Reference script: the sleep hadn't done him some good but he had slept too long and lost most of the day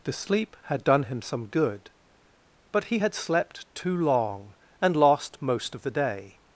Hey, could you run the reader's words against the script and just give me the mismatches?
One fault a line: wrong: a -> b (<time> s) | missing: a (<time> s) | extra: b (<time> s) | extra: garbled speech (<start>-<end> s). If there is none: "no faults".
wrong: hadn't -> had (0.7 s)